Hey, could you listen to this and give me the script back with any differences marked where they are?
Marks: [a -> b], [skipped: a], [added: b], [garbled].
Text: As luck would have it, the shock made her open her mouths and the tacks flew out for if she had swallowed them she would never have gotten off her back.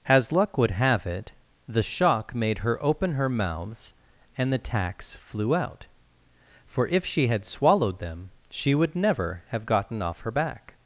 As luck would have it, the shock made her open her mouths and the tacks flew out for if she had swallowed them she would never have gotten off her back.